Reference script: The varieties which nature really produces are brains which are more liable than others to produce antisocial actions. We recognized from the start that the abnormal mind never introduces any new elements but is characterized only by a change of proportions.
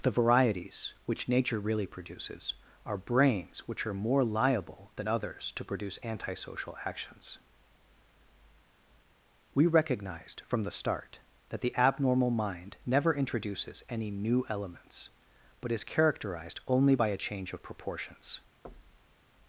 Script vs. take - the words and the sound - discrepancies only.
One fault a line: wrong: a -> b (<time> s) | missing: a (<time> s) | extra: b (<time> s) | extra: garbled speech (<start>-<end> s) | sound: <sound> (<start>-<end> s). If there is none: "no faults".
sound: thud (18.6-19.2 s)